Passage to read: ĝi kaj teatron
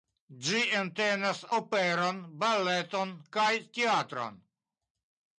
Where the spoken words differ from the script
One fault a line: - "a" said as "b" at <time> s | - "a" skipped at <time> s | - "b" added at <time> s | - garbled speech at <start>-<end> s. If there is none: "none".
- "entenas operon baleton" added at 0.8 s